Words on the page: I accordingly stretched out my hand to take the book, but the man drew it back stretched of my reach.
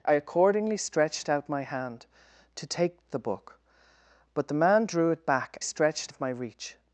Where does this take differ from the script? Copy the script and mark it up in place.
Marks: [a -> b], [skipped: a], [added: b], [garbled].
I accordingly stretched out my hand to take the book, but the man drew it back stretched of my reach.